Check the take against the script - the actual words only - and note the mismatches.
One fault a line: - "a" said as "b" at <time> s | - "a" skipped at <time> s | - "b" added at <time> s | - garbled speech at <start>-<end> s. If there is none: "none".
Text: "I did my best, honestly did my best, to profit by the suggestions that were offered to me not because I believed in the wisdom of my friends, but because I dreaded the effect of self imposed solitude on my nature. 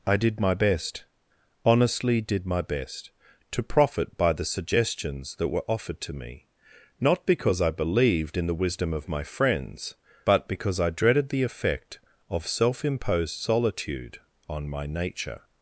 none